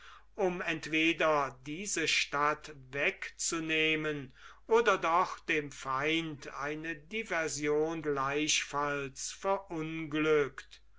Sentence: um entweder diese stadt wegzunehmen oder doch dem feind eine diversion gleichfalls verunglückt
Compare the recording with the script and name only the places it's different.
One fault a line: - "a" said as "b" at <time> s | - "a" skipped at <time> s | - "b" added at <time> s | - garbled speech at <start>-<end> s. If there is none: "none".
none